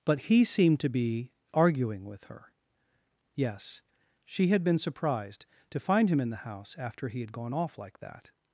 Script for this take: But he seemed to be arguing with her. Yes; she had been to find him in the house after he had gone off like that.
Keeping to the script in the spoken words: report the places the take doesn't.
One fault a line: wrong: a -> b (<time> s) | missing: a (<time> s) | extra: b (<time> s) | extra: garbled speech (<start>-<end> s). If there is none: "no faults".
extra: surprised (4.8 s)